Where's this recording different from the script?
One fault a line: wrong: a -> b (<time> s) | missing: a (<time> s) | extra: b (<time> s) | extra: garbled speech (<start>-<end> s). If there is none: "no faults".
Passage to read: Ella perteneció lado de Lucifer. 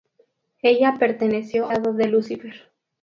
no faults